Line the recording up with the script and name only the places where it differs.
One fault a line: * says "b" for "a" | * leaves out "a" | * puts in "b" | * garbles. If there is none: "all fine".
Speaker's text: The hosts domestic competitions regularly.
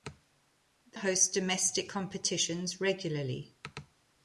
all fine